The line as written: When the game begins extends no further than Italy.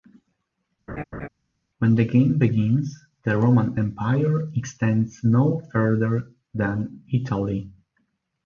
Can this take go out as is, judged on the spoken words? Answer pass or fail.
fail